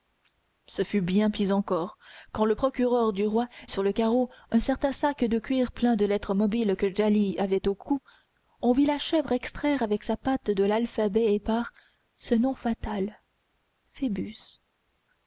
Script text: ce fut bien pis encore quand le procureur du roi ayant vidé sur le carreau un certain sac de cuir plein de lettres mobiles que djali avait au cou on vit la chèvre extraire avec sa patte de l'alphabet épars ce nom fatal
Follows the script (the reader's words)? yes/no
no